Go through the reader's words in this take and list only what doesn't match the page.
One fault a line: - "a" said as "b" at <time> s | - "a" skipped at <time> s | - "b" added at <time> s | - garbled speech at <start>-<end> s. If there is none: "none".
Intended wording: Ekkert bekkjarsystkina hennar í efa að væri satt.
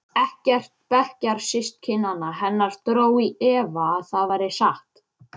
- "dró" added at 2.9 s
- "það" added at 4.1 s